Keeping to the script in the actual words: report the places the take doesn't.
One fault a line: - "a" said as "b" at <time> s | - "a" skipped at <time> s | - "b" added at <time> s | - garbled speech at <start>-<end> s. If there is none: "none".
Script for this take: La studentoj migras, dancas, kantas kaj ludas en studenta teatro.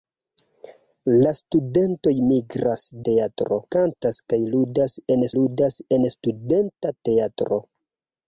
- "dancas" said as "teatro" at 3.1 s
- "ludas en" added at 5.4 s